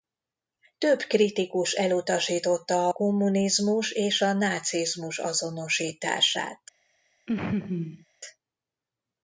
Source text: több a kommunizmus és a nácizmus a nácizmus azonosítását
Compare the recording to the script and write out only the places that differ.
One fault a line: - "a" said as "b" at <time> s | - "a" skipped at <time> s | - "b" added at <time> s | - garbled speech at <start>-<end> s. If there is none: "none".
- "kritikus elutasította" added at 1.0 s
- "a nácizmus" skipped at 5.2 s